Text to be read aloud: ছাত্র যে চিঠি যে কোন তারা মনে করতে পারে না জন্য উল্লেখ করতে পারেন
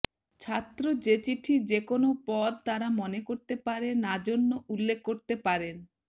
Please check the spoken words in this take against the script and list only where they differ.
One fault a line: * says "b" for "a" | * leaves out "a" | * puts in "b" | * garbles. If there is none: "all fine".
* puts in "পদ"